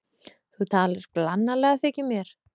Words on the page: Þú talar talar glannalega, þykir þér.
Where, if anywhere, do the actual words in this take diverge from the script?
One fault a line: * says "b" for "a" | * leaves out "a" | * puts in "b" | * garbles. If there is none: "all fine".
* leaves out "talar"
* says "mér" for "þér"